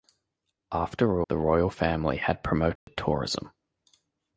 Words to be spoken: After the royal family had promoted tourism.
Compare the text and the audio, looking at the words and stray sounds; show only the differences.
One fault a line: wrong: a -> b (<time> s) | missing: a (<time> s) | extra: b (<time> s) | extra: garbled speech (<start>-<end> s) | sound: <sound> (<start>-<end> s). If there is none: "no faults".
sound: dropout (2.8-2.9 s)